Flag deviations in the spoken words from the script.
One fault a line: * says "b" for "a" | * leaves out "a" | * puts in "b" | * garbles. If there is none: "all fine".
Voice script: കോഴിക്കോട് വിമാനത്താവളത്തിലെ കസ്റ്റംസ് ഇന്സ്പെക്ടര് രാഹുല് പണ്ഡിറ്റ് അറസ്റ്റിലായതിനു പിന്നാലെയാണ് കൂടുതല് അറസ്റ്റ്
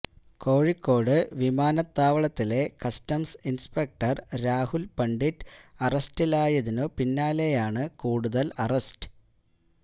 all fine